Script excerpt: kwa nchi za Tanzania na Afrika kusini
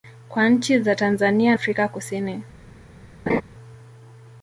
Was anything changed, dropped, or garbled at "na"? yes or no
yes